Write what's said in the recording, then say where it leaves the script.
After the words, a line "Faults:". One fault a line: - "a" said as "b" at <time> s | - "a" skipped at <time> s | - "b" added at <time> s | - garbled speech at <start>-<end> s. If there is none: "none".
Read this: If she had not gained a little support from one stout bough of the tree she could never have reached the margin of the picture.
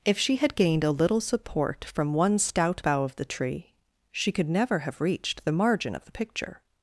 If she had gained a little support from one stout bough of the tree she could never have reached the margin of the picture.
Faults:
- "not" skipped at 0.6 s